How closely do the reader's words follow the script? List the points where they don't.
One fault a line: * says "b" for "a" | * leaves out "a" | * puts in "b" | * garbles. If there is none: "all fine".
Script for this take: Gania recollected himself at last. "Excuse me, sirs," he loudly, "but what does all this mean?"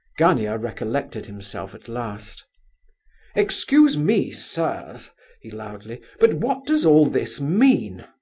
all fine